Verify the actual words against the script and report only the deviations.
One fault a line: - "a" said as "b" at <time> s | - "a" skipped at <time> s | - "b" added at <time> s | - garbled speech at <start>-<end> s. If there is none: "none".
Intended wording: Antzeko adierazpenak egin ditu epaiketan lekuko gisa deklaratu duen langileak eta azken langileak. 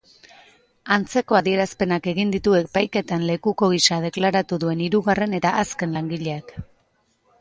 - "langileak" said as "hirugarren" at 4.8 s